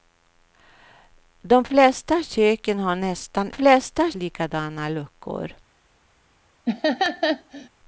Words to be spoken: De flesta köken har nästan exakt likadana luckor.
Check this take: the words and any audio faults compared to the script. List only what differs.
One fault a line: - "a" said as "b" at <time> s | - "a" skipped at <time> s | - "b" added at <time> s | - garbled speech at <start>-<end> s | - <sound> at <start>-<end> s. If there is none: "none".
- "exakt" said as "flesta" at 3.5 s
- laugh at 6.7-7.7 s